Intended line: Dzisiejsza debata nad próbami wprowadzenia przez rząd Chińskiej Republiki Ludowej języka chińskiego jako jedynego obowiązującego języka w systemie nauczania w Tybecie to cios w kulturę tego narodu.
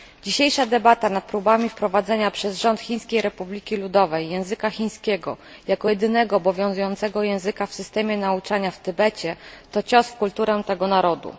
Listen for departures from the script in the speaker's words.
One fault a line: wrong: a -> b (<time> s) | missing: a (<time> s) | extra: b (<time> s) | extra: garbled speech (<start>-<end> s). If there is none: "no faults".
no faults